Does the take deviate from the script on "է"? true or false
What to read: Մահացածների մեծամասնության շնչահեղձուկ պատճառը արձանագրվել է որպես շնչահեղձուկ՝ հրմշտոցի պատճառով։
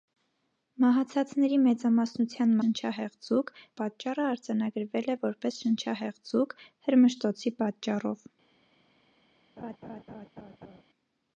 false